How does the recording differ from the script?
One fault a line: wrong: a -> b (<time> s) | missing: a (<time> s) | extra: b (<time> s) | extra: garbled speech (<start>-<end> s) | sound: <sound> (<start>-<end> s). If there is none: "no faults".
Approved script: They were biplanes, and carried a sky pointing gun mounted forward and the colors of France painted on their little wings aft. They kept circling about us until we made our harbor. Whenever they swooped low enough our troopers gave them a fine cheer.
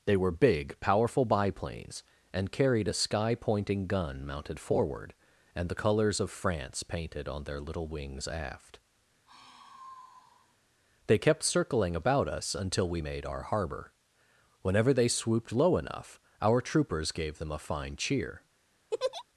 extra: big powerful (0.3 s)
sound: sigh (9.3-10.6 s)
sound: laugh (18.9-19.2 s)